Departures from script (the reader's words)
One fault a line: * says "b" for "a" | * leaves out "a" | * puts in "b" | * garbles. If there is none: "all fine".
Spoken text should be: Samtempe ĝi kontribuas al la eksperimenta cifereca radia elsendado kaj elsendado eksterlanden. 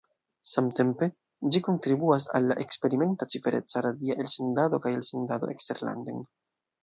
all fine